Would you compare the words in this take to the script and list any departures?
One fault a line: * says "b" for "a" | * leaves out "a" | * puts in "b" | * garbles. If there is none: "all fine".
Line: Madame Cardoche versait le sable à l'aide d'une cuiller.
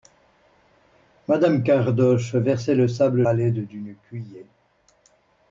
all fine